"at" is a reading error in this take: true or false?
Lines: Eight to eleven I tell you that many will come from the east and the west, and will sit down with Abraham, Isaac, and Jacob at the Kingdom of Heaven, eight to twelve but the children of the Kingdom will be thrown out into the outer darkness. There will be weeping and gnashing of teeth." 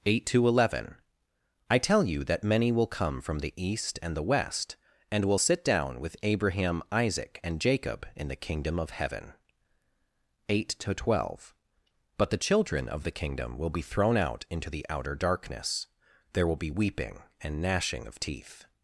true